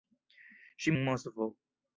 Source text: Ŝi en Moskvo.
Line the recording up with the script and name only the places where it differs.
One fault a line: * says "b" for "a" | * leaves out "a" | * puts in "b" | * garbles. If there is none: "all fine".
all fine